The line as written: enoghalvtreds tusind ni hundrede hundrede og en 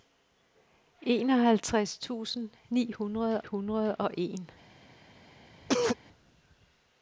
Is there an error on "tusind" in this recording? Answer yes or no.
no